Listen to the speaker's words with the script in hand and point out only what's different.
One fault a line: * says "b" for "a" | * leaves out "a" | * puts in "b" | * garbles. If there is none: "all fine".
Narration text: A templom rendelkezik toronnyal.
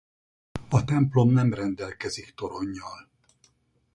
* puts in "nem"